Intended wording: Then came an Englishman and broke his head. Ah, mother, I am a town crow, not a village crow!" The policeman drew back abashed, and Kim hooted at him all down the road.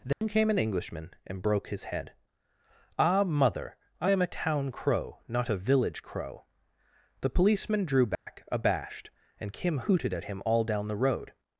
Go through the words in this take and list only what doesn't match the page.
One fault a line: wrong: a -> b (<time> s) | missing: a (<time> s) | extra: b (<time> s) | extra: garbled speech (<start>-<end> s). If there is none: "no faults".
no faults